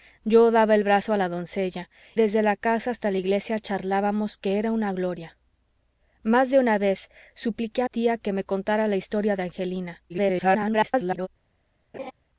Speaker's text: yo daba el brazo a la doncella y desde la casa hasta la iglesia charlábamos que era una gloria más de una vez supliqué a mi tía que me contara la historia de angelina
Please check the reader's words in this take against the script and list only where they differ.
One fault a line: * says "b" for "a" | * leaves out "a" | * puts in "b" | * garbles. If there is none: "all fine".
* leaves out "y"
* leaves out "mi"
* garbles